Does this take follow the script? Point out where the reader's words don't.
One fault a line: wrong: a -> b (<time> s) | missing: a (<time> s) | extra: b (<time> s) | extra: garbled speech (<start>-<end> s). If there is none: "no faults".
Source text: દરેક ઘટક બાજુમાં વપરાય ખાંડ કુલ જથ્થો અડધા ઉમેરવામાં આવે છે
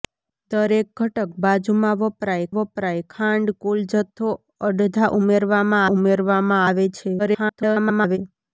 extra: વપરાય (2.6 s)
extra: ઉમેરવામાં (5.9 s)
extra: garbled speech (7.2-8.2 s)